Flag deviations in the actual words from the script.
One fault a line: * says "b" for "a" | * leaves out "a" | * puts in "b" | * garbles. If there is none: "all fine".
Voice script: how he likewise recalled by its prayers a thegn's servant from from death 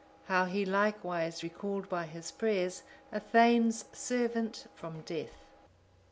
* says "his" for "its"
* leaves out "from"